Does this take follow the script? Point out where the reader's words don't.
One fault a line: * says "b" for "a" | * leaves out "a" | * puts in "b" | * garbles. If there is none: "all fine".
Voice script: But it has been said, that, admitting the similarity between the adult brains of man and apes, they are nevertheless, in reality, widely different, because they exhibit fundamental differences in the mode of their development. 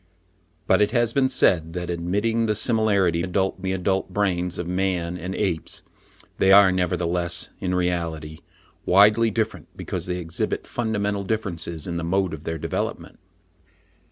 * says "adult" for "between"